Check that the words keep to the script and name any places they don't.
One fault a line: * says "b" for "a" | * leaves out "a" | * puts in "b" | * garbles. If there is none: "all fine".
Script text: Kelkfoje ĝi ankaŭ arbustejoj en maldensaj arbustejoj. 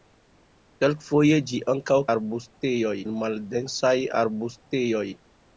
all fine